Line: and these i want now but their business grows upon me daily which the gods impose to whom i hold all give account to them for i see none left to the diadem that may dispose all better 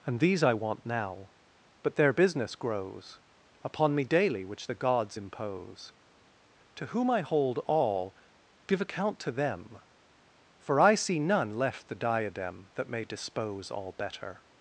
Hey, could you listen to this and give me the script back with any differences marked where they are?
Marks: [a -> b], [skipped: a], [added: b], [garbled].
and these i want now but their business grows upon me daily which the gods impose to whom i hold all give account to them for i see none left [skipped: to] the diadem that may dispose all better